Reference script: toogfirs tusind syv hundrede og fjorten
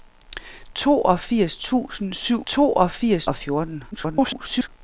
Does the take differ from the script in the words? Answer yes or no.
yes